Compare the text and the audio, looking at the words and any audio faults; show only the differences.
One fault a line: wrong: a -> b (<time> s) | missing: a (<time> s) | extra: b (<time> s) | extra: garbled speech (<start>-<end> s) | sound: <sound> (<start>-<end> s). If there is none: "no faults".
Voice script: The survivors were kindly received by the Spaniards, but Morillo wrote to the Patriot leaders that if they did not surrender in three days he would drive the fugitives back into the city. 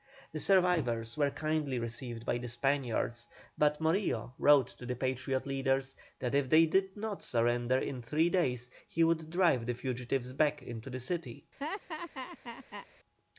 sound: laugh (11.6-12.9 s)